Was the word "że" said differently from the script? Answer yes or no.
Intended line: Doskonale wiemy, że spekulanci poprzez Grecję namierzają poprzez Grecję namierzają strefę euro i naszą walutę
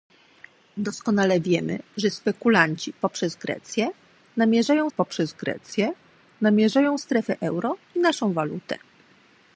no